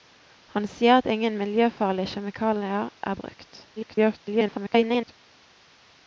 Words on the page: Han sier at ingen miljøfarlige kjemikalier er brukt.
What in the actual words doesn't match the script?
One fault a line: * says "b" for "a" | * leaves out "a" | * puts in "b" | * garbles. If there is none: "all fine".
* garbles